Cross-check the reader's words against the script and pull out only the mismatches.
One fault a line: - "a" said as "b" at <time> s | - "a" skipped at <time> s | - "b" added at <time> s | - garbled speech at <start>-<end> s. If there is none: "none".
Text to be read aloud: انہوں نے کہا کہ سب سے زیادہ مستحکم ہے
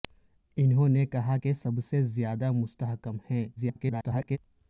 - garbled speech at 3.6-4.4 s